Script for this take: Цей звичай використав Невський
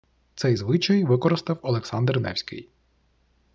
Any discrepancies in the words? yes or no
yes